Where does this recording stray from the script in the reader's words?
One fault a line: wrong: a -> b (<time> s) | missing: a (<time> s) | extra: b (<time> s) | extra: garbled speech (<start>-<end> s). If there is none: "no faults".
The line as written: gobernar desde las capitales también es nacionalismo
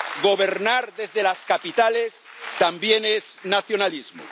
no faults